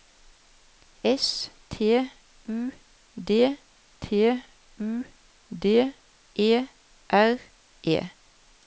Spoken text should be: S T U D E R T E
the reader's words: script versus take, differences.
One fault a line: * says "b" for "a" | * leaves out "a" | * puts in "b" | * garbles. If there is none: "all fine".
* puts in "T U D"
* leaves out "T"